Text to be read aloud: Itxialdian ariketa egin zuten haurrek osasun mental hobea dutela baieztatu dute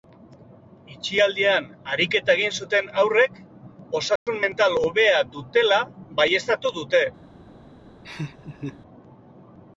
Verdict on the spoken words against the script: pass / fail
pass